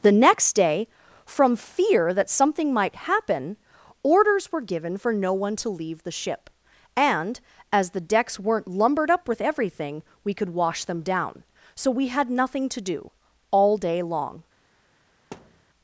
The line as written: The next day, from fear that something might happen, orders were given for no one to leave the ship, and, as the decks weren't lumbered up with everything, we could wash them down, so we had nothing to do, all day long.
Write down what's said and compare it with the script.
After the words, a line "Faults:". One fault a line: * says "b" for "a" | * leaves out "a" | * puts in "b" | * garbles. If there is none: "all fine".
The next day, from fear that something might happen, orders were given for no one to leave the ship, and, as the decks weren't lumbered up with everything, we could wash them down, so we had nothing to do, all day long.
Faults:
all fine